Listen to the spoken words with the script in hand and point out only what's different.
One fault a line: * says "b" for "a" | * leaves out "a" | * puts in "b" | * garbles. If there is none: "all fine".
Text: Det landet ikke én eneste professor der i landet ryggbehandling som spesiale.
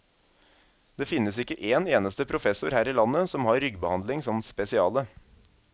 * says "finnes" for "landet"
* says "her" for "der"
* puts in "som har"